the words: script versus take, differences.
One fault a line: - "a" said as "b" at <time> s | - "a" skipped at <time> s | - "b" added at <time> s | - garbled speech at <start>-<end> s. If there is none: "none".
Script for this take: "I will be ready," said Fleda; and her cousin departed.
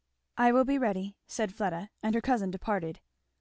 none